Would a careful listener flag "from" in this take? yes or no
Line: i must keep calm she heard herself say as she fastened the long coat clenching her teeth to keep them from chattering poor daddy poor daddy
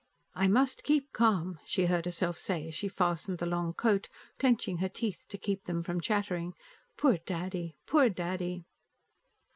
no